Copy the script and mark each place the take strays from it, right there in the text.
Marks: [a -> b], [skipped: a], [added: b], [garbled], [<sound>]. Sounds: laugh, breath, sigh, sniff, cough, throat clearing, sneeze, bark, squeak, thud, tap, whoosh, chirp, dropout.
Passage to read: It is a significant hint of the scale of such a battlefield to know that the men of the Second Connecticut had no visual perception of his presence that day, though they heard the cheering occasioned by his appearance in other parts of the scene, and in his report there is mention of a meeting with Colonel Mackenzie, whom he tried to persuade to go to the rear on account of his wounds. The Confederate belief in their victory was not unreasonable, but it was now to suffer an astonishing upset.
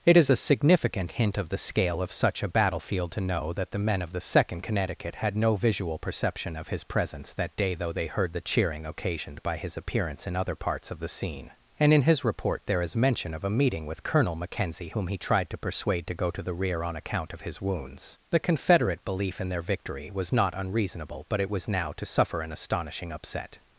It is a significant hint of the scale of such a battlefield to know that the men of the Second Connecticut had no visual perception of his presence that day, though they heard the cheering occasioned by his appearance in other parts of the scene, and in his report there is mention of a meeting with Colonel Mackenzie, whom he tried to persuade to go to the rear on account of his wounds. The Confederate belief in their victory was not unreasonable, but it was now to suffer an astonishing upset.